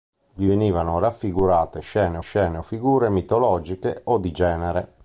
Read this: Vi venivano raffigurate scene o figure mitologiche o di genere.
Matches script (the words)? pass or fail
fail